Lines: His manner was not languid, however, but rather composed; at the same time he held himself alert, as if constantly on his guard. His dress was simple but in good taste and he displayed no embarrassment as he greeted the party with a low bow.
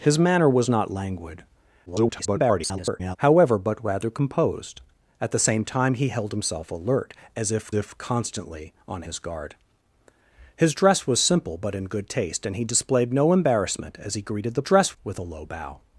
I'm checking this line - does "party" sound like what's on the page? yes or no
no